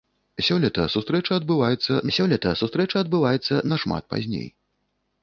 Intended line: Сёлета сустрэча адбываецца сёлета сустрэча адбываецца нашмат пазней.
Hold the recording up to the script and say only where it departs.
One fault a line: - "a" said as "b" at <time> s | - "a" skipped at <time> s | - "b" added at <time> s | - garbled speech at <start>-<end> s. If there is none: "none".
none